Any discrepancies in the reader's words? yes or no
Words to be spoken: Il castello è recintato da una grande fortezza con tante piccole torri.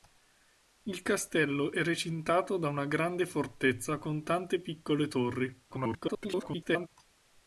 yes